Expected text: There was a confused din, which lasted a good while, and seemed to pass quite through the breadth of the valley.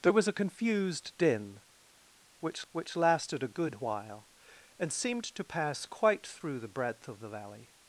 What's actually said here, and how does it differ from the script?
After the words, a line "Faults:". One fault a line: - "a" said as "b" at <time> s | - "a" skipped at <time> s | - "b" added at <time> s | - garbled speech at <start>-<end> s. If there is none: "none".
There was a confused din, which which lasted a good while, and seemed to pass quite through the breadth of the valley.
Faults:
- "which" added at 2.7 s